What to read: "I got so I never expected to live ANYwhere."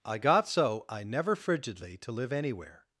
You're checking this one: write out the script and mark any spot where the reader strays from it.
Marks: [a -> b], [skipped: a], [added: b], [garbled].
"I got so I never [expected -> frigidly] to live ANYwhere."